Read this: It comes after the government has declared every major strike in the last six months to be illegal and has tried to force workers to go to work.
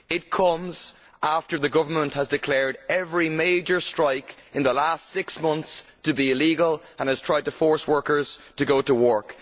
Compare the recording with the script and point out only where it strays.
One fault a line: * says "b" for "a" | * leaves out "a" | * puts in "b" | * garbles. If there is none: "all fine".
all fine